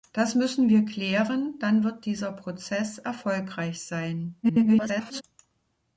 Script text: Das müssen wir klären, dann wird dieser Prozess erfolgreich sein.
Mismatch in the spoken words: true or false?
true